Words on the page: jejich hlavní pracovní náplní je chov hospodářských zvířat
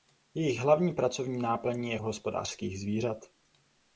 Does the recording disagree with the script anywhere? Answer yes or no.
yes